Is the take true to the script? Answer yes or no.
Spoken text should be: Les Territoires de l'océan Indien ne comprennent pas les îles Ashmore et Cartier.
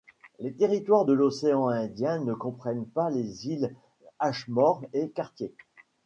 yes